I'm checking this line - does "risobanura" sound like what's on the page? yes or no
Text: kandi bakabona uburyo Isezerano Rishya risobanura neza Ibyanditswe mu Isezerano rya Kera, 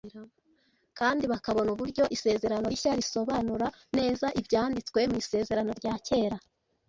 yes